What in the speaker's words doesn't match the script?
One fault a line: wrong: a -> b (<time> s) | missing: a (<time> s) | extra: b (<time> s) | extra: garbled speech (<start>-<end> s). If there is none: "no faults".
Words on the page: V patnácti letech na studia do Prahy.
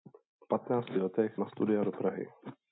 no faults